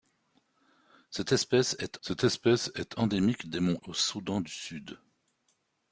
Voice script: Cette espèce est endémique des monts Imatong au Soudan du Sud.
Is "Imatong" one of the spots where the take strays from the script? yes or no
yes